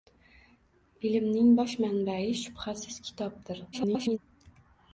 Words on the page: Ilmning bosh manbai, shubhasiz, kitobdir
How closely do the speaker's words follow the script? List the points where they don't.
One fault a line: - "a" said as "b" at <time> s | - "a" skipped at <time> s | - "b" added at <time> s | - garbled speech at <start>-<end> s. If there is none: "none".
- garbled speech at 3.7-4.2 s